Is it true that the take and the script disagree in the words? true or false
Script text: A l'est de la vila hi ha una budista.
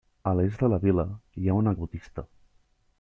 false